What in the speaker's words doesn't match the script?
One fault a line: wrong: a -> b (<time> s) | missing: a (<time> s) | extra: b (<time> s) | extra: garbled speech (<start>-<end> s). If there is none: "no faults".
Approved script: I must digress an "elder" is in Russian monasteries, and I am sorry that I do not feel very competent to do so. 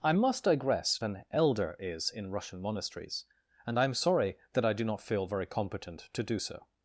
no faults